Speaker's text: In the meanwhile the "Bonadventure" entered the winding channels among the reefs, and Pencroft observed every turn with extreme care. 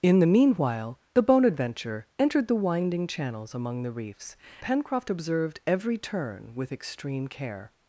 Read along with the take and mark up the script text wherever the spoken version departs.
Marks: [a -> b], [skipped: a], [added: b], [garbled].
In the meanwhile the "Bonadventure" entered the winding channels among the reefs, [skipped: and] Pencroft observed every turn with extreme care.